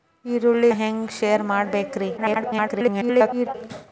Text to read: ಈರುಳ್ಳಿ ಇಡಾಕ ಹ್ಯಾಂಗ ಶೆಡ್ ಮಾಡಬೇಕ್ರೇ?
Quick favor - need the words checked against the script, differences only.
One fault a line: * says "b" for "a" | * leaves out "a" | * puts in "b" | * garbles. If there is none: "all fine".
* leaves out "ಇಡಾಕ"
* garbles